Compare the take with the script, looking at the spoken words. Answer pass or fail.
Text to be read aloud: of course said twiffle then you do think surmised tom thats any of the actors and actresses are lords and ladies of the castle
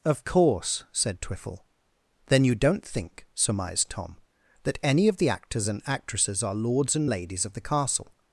fail